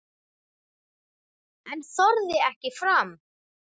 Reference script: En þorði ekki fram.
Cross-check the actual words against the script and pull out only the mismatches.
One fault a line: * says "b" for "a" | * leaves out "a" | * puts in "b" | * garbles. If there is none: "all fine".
all fine